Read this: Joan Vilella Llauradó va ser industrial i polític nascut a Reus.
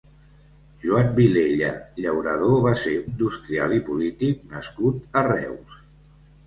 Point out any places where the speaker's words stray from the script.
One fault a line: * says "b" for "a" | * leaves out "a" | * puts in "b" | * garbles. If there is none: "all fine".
all fine